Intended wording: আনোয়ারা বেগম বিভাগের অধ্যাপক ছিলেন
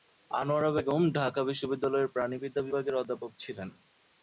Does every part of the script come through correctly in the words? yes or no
no